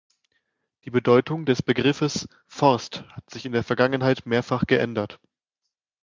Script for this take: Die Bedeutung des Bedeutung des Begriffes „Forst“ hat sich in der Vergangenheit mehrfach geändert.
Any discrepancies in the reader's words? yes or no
yes